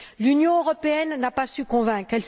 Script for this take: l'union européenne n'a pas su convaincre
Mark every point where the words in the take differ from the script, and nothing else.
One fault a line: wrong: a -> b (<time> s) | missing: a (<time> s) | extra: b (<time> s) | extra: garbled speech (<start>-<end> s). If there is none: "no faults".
no faults